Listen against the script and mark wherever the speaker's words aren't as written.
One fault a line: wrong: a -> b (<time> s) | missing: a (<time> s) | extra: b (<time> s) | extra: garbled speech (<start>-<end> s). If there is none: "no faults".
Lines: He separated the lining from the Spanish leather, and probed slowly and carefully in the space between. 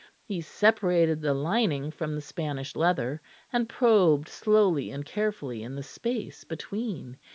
no faults